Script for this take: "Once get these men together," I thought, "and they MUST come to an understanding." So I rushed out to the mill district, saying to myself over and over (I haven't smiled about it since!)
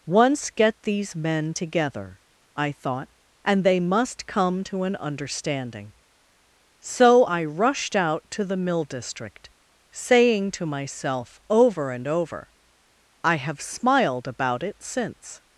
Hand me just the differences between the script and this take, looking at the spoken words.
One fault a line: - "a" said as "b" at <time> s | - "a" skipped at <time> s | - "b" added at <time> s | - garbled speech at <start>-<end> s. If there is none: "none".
- "haven't" said as "have" at 13.4 s